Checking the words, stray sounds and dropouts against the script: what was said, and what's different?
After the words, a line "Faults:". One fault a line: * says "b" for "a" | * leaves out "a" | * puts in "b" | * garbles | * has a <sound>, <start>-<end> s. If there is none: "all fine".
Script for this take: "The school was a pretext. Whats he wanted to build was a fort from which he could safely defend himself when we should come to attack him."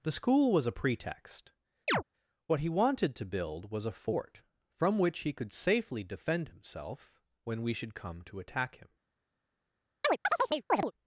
"The school was a pretext. What he wanted to build was a fort from which he could safely defend himself when we should come to attack him."
Faults:
* has a chirp, 1.9-2.0 s
* says "What" for "Whats"
* has a chirp, 10.0-10.9 s